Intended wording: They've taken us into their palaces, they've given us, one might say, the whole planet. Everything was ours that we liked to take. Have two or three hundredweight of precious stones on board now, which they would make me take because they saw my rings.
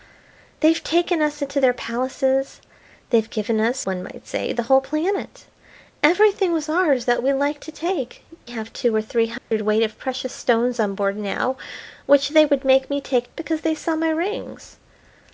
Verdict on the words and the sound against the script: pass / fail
fail